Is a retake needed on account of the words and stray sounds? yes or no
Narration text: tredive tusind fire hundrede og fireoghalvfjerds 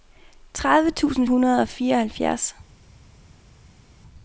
yes